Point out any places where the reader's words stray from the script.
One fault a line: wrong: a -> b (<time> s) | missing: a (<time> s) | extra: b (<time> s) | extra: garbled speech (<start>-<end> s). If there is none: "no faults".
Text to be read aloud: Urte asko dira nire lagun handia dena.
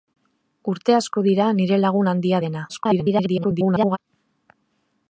extra: garbled speech (2.7-4.0 s)